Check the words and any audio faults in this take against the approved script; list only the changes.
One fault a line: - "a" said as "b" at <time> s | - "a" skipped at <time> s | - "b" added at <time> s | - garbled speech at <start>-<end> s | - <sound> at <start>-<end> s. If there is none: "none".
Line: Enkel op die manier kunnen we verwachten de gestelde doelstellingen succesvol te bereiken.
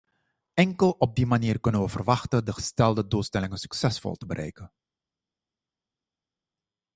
none